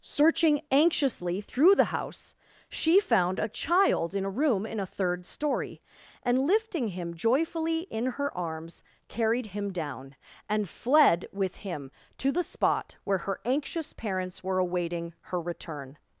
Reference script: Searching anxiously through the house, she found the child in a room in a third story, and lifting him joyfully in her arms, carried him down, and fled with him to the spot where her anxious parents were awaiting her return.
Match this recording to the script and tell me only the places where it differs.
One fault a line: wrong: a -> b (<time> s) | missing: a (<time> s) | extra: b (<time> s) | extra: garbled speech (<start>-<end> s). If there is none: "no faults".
wrong: the -> a (3.4 s)